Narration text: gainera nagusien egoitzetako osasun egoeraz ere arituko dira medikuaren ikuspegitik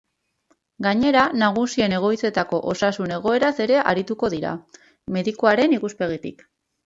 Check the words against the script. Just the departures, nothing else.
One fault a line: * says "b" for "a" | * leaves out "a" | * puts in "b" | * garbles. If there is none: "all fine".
all fine